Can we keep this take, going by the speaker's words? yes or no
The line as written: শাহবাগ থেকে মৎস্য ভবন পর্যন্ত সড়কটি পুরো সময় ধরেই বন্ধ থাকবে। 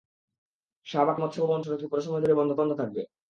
no